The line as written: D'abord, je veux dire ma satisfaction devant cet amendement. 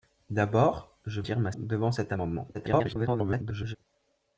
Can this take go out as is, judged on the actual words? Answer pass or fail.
fail